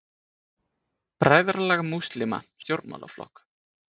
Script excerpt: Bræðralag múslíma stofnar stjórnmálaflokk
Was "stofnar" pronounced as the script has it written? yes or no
no